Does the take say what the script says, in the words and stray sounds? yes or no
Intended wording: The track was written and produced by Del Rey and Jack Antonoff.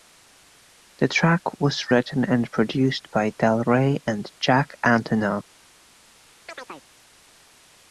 no